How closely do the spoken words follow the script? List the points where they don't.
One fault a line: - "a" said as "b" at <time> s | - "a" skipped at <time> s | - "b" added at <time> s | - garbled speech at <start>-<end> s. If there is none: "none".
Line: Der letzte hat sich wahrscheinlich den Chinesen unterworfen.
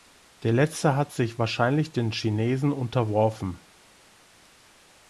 none